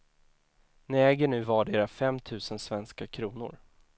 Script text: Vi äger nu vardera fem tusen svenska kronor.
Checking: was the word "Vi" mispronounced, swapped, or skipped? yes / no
yes